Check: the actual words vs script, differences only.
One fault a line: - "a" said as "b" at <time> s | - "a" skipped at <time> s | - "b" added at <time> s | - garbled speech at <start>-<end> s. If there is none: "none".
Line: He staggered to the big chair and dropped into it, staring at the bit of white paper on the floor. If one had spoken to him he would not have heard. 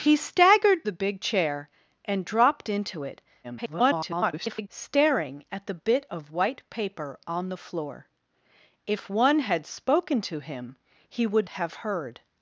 - "to" skipped at 0.8 s
- garbled speech at 3.4-4.7 s
- "not" skipped at 11.5 s